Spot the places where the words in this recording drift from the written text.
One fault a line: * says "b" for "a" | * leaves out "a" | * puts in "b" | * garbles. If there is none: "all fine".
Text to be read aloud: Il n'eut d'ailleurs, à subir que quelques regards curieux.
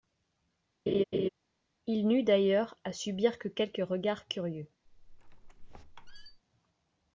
all fine